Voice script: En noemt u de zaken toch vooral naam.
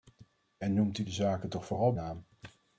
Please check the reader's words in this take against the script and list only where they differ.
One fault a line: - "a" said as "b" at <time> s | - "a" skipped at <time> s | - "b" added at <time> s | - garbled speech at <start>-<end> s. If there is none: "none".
none